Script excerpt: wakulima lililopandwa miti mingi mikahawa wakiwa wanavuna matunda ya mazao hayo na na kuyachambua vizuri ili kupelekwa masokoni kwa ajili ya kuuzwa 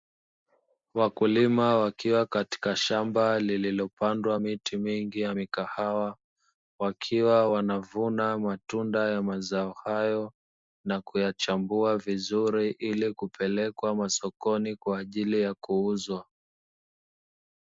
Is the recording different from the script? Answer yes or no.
yes